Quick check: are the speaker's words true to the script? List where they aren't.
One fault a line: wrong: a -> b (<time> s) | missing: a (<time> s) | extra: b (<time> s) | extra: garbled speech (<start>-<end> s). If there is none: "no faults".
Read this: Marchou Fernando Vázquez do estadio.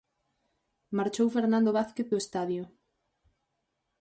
no faults